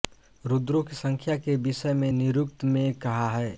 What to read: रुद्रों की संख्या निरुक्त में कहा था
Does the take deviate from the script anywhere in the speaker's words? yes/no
yes